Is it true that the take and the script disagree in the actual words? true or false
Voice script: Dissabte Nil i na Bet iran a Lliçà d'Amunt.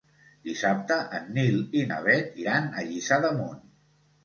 true